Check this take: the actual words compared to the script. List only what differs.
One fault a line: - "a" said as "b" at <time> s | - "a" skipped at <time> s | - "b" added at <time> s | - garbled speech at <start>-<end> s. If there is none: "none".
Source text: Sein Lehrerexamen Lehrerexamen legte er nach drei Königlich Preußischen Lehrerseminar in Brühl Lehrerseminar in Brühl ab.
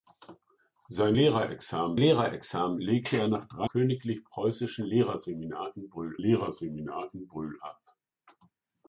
none